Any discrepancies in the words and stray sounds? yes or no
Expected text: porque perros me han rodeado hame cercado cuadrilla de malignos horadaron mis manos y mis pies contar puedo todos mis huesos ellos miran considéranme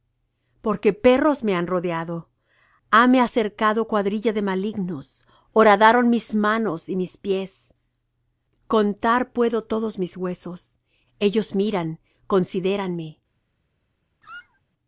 yes